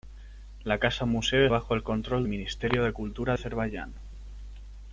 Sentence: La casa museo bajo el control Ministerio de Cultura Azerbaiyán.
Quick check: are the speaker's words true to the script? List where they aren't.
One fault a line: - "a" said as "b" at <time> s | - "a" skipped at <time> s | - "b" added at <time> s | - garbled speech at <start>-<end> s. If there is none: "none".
none